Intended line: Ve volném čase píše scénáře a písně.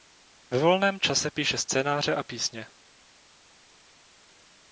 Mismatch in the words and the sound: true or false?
false